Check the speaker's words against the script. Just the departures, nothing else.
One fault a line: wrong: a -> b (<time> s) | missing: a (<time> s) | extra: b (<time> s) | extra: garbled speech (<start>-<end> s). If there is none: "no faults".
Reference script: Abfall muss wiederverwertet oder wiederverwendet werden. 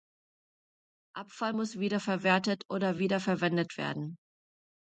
no faults